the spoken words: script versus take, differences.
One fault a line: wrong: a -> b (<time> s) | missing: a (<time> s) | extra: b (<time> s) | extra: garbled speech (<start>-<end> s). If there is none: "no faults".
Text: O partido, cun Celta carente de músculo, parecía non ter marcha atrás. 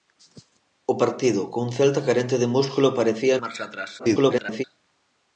missing: non ter (3.4 s)
extra: garbled speech (4.0-4.6 s)